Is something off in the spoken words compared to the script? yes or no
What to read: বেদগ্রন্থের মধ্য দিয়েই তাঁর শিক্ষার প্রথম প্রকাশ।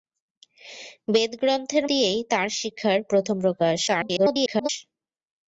yes